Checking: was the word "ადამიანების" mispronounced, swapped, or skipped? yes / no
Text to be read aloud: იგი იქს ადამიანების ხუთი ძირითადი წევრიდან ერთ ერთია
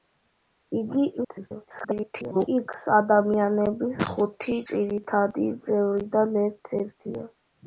no